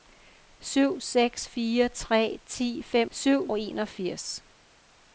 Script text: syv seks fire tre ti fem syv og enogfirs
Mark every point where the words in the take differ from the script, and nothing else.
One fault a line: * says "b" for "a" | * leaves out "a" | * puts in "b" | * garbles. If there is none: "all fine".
all fine